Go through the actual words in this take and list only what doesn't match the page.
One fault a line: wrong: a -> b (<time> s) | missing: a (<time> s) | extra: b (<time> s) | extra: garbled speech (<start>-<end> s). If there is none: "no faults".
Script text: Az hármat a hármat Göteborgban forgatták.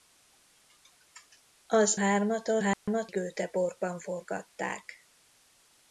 no faults